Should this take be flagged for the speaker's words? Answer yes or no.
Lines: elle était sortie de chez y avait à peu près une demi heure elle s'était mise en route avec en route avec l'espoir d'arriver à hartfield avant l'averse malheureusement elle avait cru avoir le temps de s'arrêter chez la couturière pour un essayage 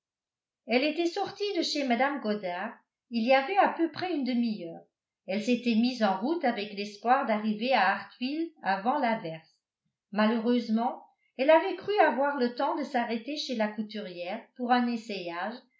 yes